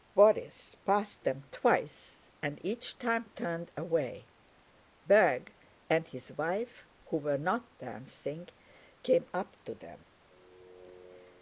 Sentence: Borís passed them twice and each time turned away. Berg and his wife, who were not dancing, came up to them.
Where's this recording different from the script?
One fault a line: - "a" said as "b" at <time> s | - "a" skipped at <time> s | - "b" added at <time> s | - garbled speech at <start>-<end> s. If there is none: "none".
none